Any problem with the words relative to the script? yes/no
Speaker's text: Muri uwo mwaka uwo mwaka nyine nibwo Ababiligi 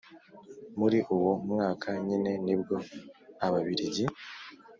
yes